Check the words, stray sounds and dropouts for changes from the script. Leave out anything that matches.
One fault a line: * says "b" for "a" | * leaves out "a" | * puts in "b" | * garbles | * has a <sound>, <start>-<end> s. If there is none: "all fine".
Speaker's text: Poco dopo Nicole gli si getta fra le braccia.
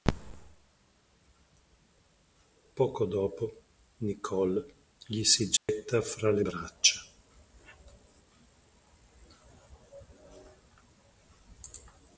* has a dropout, 5.6-5.7 s